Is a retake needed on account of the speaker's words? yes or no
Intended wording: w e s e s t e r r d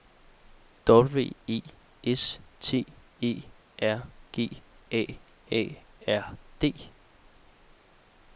yes